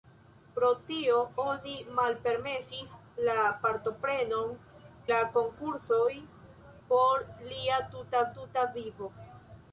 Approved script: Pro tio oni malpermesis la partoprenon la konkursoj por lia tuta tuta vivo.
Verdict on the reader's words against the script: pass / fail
pass